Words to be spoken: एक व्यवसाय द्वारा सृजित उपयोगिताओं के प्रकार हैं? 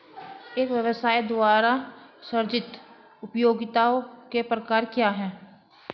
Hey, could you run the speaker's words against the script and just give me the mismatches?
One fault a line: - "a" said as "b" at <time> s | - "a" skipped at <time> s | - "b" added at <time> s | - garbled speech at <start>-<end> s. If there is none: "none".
- "क्या" added at 4.8 s